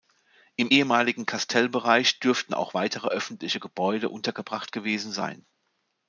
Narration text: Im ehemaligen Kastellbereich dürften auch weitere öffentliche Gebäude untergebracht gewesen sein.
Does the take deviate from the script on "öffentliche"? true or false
false